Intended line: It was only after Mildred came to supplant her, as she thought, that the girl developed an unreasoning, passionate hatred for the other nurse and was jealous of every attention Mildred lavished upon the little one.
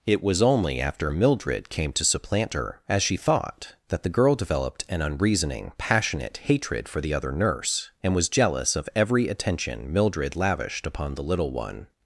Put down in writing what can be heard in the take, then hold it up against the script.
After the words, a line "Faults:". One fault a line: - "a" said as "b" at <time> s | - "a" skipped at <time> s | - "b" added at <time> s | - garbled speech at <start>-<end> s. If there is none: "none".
It was only after Mildred came to supplant her, as she thought, that the girl developed an unreasoning, passionate hatred for the other nurse and was jealous of every attention Mildred lavished upon the little one.
Faults:
none